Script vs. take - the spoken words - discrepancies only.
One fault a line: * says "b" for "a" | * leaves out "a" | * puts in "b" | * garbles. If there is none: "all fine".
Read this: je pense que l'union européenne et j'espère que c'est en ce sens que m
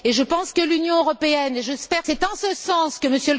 * leaves out "que"